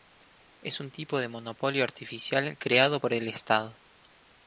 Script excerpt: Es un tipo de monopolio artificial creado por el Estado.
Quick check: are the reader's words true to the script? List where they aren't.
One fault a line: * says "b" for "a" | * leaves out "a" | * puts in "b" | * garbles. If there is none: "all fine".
all fine